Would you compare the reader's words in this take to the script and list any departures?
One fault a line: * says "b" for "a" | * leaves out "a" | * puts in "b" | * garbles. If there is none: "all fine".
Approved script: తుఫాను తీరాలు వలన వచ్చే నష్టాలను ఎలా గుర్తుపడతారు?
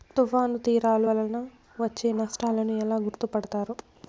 all fine